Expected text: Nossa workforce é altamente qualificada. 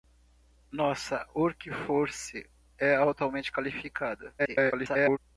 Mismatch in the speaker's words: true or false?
true